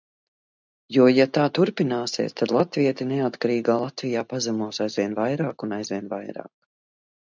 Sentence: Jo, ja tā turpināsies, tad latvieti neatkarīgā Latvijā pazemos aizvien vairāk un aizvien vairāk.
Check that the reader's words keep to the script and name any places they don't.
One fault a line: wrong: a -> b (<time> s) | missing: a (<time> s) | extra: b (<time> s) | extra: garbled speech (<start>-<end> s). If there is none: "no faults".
no faults